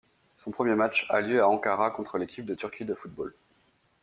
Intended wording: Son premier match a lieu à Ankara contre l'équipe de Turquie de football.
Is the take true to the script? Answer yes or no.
yes